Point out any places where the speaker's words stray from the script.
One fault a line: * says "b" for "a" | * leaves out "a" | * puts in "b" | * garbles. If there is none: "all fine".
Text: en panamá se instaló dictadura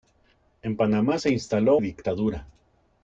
all fine